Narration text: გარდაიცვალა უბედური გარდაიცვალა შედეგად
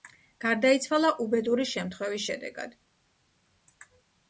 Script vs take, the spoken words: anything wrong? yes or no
yes